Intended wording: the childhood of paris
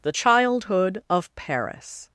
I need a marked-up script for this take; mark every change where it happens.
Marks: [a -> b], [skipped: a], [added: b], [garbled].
the childhood of paris